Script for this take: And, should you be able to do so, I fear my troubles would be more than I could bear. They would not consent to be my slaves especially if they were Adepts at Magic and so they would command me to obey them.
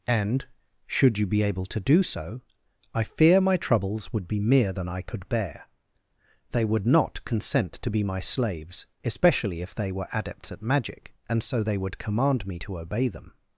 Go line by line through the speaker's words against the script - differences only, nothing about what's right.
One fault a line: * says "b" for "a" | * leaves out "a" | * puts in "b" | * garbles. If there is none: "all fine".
* says "mere" for "more"